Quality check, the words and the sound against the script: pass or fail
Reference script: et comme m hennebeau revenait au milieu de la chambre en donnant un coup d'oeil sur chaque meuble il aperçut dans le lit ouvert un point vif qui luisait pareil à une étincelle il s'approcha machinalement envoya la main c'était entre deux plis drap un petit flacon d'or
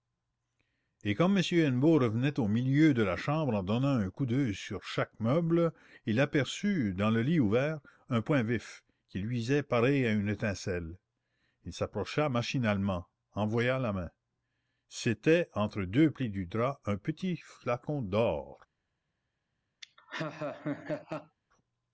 fail